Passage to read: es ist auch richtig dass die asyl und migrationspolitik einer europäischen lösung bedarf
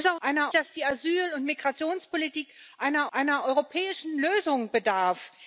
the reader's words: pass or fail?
fail